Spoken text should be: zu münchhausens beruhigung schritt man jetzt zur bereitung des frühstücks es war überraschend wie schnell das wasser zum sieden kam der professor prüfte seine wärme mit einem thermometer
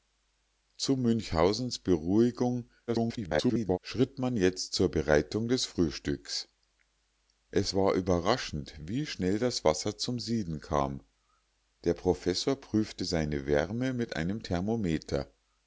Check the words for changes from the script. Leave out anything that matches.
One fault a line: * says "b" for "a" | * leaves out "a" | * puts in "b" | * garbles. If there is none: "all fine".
* garbles